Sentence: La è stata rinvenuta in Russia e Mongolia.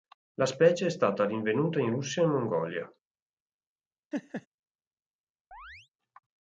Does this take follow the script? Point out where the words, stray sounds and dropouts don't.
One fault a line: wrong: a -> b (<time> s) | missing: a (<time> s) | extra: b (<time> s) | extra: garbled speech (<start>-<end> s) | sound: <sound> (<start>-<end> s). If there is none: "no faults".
extra: specie (0.5 s)
sound: laugh (4.1-4.5 s)
sound: chirp (5.5-5.9 s)